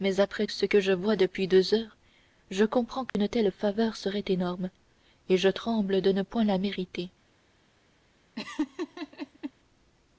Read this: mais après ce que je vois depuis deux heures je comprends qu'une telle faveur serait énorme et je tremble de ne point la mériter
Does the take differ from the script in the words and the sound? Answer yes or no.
yes